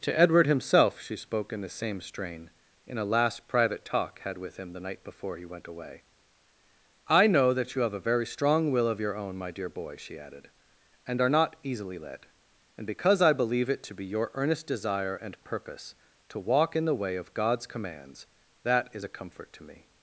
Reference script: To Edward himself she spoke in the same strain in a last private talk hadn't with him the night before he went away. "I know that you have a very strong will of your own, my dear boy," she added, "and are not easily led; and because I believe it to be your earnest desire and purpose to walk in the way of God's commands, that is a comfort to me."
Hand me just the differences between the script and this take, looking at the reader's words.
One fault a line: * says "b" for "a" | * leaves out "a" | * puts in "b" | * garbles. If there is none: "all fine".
* says "had" for "hadn't"